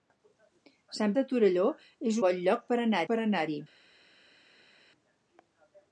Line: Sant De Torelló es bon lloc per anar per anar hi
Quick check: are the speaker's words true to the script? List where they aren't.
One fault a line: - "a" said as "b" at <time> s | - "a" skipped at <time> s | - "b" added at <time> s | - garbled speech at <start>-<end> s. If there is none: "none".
none